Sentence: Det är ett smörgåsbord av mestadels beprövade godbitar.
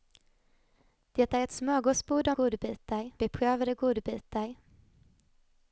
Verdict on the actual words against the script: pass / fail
fail